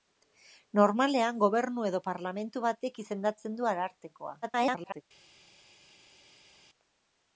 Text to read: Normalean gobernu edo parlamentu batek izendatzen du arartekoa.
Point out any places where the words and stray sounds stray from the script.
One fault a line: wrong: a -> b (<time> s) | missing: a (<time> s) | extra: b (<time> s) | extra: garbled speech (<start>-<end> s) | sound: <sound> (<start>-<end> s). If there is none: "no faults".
extra: garbled speech (4.4-5.0 s)